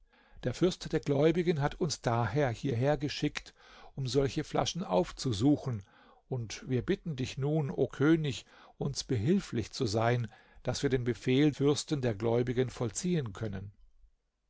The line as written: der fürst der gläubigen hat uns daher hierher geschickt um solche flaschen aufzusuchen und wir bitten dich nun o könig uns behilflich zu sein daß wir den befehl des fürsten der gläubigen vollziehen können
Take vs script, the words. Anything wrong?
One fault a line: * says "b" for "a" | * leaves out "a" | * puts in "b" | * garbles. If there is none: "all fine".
* leaves out "des"